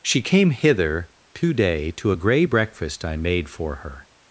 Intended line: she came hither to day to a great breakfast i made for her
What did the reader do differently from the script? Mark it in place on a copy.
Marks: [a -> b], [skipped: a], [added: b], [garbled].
she came hither to day to a [great -> grey] breakfast i made for her